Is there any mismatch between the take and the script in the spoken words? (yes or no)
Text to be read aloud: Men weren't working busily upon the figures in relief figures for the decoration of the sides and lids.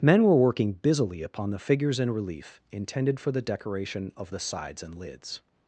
yes